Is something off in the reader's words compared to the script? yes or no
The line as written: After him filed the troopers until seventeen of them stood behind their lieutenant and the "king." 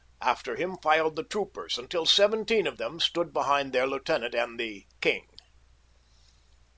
no